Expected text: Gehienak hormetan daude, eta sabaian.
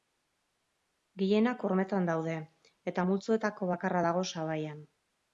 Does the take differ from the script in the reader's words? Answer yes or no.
yes